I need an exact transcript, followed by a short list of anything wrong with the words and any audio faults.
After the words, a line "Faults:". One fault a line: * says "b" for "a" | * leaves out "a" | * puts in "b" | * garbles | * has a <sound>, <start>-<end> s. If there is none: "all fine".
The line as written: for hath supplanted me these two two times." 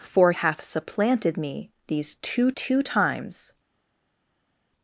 for hath supplanted me these two two times."
Faults:
all fine